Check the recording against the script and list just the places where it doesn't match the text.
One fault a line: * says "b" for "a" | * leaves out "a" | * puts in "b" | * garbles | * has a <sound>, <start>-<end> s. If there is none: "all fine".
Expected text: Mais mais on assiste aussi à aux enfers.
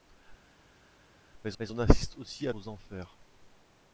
all fine